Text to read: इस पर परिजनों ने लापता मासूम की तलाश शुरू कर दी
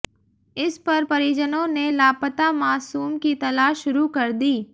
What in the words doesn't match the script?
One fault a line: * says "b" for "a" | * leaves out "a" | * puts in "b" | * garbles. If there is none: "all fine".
all fine